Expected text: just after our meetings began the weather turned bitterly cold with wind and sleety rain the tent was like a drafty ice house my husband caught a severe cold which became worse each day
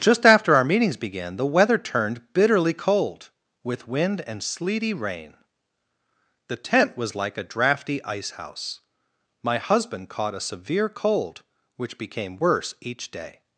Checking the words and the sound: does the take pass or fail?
pass